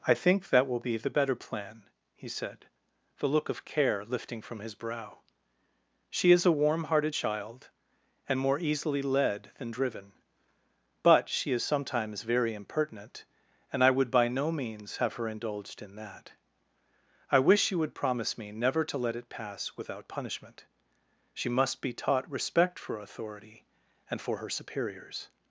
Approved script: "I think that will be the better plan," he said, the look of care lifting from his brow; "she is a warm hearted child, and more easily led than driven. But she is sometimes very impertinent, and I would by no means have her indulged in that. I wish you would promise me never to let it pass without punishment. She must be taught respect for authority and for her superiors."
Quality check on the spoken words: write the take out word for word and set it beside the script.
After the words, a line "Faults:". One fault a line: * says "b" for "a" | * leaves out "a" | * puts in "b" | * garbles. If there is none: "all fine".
"I think that will be the better plan," he said, the look of care lifting from his brow; "she is a warm hearted child, and more easily led than driven. But she is sometimes very impertinent, and I would by no means have her indulged in that. I wish you would promise me never to let it pass without punishment. She must be taught respect for authority and for her superiors."
Faults:
all fine